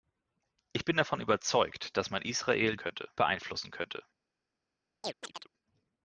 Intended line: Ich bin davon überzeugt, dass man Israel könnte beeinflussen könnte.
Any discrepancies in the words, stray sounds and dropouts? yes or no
yes